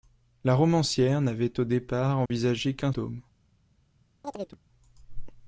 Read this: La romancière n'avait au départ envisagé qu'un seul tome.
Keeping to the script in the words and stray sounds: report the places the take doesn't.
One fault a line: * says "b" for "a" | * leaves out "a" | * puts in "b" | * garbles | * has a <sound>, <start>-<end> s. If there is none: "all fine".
* has a dropout, 2.3-2.3 s
* leaves out "seul"
* has a chirp, 4.2-4.6 s